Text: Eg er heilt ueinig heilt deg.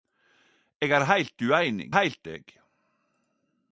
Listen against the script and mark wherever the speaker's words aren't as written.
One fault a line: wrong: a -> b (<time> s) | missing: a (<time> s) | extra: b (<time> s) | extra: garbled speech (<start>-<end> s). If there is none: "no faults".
no faults